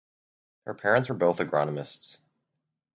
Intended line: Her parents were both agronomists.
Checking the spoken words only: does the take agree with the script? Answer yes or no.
yes